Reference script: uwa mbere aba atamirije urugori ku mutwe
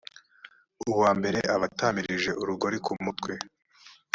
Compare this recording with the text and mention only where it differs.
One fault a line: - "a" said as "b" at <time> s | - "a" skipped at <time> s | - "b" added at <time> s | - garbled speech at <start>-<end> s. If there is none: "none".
none